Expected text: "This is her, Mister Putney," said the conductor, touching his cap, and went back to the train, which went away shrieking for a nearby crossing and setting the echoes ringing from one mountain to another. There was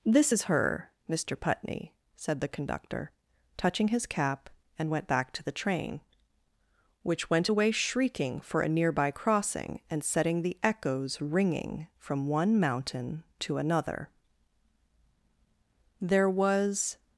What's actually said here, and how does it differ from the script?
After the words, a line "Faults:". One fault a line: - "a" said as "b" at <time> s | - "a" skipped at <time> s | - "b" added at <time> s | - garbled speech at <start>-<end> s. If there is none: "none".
"This is her, Mister Putney," said the conductor, touching his cap, and went back to the train, which went away shrieking for a nearby crossing and setting the echoes ringing from one mountain to another. There was
Faults:
none